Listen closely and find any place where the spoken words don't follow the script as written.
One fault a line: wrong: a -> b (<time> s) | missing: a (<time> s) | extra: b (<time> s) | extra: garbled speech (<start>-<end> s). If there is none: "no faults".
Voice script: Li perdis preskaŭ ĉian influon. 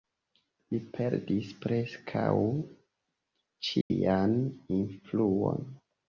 no faults